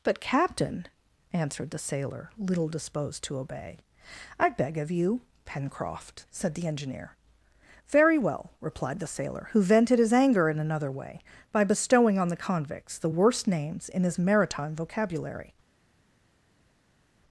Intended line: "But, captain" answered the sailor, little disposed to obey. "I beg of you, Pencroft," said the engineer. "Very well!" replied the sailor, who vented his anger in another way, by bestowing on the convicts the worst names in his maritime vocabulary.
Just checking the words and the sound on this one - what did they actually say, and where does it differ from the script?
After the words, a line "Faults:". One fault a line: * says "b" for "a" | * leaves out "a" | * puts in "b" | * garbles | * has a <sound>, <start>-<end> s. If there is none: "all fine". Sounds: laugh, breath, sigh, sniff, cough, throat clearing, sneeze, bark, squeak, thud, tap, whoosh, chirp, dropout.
"But, captain" answered the sailor, little disposed to obey. "I beg of you, Pencroft," said the engineer. "Very well!" replied the sailor, who vented his anger in another way, by bestowing on the convicts the worst names in his maritime vocabulary.
Faults:
all fine